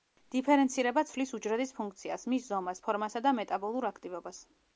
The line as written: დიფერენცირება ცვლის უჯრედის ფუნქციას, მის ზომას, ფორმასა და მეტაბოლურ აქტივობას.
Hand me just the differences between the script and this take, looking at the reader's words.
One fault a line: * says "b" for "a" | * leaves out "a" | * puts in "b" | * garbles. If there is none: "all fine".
all fine